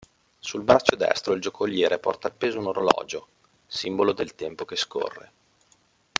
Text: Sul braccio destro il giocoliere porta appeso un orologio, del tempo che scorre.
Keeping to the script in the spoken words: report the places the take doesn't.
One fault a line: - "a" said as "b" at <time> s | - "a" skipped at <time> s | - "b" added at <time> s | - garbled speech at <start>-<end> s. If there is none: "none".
- "simbolo" added at 3.7 s